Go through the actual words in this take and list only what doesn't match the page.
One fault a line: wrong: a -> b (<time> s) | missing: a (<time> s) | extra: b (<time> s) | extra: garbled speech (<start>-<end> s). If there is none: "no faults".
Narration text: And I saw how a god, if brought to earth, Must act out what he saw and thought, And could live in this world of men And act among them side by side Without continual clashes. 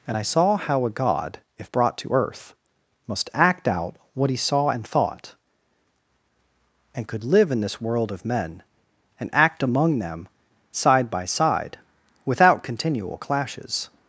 no faults